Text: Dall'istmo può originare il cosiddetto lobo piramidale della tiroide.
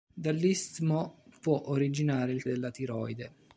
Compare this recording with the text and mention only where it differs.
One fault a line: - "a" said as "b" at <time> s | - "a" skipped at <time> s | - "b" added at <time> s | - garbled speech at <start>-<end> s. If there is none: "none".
- "cosiddetto lobo piramidale" skipped at 2.4 s